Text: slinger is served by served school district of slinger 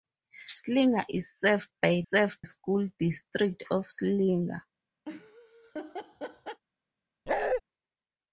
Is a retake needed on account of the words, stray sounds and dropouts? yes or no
yes